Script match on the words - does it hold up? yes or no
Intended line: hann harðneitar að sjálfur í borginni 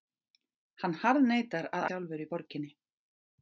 yes